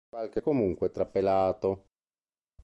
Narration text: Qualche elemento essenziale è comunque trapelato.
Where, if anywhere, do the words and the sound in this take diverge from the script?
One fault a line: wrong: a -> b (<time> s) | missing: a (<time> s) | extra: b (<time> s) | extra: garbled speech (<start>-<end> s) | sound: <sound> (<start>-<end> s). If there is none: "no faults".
missing: elemento essenziale (0.4 s)